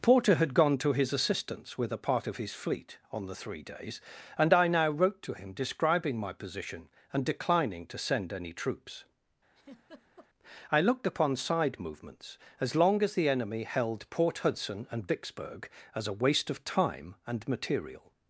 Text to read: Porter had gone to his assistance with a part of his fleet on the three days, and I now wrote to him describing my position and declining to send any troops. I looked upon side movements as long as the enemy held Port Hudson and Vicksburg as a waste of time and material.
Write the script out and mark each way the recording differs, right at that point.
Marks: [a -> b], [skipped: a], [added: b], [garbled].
Porter had gone to his assistance with a part of his fleet on the three days, and I now wrote to him describing my position and declining to send any troops. I looked upon side movements as long as the enemy held Port Hudson and Vicksburg as a waste of time and material.